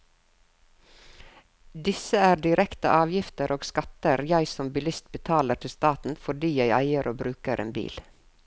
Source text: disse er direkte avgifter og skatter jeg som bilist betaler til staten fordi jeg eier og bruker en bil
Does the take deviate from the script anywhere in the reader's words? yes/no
no